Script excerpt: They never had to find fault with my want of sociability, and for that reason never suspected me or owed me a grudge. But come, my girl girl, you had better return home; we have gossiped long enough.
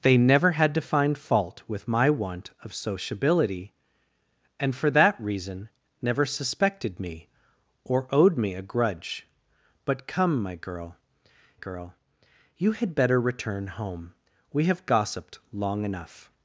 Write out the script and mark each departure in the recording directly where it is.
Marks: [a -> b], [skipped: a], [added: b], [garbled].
They never had to find fault with my want of sociability, and for that reason never suspected me or owed me a grudge. But come, my girl girl, you had better return home; we have gossiped long enough.